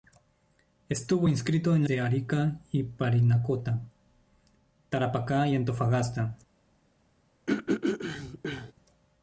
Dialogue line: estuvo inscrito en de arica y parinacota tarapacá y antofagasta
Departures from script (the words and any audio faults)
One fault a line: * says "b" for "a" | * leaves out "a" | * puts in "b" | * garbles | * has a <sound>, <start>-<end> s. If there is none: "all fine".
* has a throat clearing, 7.5-8.7 s